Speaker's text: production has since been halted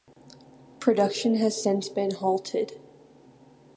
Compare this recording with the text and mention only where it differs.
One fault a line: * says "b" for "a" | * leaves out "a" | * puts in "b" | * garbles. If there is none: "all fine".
all fine